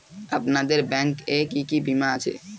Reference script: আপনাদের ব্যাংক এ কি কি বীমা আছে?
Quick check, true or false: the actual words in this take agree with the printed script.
true